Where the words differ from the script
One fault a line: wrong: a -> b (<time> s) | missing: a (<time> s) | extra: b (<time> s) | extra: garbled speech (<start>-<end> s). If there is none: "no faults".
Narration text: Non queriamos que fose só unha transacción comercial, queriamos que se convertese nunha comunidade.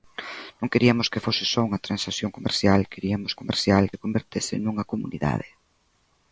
wrong: que -> comercial (3.4 s)